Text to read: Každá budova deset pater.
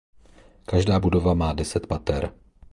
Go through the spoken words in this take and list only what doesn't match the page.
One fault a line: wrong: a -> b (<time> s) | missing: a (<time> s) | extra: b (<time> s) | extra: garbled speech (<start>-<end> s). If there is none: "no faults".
extra: má (1.3 s)